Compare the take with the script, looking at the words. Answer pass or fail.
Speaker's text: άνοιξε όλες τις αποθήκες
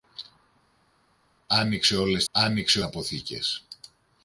fail